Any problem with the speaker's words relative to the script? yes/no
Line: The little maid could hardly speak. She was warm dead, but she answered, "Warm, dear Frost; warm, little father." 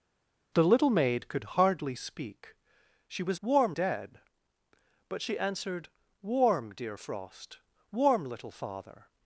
no